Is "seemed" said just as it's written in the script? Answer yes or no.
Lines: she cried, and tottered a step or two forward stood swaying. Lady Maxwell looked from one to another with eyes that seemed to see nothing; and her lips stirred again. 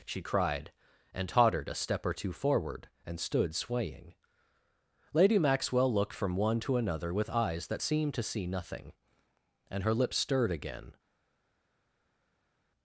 yes